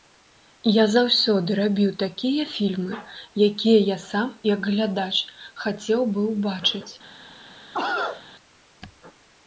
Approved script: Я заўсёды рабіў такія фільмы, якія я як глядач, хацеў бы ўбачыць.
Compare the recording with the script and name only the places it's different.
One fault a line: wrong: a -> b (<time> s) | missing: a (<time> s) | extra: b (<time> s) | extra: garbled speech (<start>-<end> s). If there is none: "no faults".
extra: сам (4.0 s)